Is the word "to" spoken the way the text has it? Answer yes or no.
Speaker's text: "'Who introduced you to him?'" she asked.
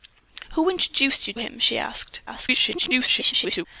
no